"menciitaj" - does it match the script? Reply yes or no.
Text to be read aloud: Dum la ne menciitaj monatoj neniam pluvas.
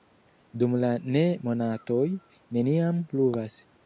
no